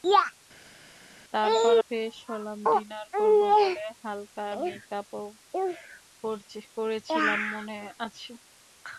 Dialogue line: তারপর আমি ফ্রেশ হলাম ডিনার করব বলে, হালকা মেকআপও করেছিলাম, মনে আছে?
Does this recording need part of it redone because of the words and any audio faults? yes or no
yes